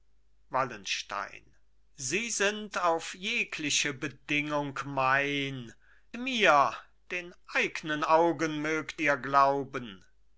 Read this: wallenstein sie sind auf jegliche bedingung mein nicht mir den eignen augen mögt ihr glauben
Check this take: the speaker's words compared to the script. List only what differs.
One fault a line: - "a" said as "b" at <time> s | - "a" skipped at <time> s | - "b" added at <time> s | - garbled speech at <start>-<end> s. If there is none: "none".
- "nicht" skipped at 5.8 s